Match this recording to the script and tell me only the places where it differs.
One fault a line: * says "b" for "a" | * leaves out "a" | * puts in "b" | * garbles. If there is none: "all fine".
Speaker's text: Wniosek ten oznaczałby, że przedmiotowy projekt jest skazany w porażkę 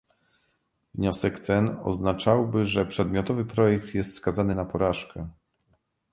* says "na" for "w"